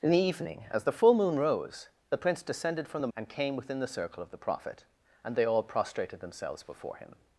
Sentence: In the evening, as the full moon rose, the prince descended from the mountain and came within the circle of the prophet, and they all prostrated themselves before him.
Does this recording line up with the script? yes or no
no